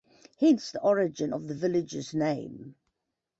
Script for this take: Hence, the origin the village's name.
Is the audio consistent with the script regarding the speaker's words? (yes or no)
no